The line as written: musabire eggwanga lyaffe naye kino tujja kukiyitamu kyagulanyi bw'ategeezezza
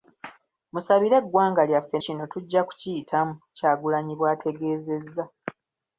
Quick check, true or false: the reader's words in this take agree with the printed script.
false